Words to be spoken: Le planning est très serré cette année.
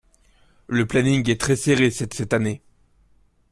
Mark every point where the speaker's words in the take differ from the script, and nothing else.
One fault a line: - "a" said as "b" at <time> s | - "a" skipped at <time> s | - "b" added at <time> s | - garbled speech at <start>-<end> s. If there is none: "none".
- "cette" added at 2.1 s